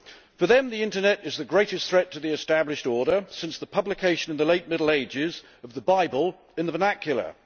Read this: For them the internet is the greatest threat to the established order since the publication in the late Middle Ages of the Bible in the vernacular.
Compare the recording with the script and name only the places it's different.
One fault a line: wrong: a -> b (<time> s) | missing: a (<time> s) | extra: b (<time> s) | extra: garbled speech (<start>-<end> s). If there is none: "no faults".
no faults